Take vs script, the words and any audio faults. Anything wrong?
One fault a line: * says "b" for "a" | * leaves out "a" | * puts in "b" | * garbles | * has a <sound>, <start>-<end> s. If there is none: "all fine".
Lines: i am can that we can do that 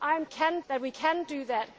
all fine